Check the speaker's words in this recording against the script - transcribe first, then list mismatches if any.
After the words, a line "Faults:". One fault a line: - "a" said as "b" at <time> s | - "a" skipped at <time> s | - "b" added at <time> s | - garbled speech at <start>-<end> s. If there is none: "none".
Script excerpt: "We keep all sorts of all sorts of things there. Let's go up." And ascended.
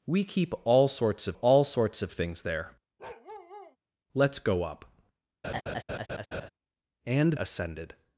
"We keep all sorts of all sorts of things there. Let's go up." And ascended.
Faults:
none